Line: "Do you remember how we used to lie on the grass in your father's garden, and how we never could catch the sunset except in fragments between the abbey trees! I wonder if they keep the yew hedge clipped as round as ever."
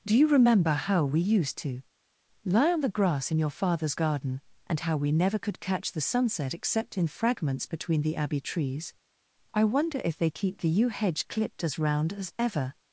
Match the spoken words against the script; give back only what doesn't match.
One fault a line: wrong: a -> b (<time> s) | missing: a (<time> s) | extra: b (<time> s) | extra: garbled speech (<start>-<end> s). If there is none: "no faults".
no faults